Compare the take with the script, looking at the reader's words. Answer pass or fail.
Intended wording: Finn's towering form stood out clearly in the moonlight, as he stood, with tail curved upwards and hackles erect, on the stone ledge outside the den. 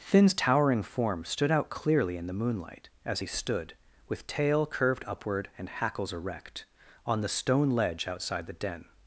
fail